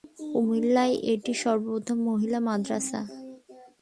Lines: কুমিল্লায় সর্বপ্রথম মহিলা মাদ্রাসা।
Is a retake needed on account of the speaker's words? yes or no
yes